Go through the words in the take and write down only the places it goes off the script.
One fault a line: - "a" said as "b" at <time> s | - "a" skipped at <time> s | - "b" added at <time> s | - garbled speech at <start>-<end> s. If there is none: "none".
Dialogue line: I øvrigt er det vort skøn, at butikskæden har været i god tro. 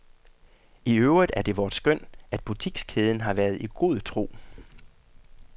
none